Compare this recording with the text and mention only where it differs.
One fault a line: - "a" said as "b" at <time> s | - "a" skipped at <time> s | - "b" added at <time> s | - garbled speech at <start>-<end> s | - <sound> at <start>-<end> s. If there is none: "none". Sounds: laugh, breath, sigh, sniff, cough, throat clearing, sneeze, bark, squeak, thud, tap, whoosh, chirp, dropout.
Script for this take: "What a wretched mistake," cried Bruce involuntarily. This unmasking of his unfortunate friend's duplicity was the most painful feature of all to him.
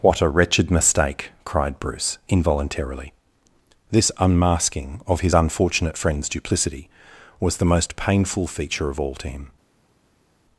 none